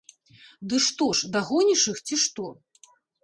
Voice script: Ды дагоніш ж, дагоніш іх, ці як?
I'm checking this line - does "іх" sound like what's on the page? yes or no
yes